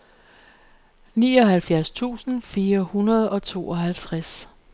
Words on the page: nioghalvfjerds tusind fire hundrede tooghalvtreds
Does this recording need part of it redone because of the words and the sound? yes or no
yes